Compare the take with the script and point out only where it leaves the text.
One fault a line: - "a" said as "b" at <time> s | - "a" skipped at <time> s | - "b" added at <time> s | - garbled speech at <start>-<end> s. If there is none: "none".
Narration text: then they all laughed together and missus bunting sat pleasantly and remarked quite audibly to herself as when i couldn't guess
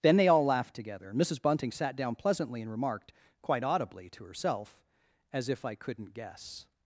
- "down" added at 1.9 s
- "when" said as "if" at 5.5 s